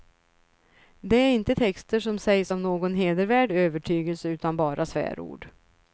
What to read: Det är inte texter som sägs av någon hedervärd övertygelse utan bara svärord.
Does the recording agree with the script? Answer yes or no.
yes